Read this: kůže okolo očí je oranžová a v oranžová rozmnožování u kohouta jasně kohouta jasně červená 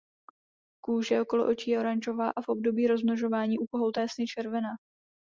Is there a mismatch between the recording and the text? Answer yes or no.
yes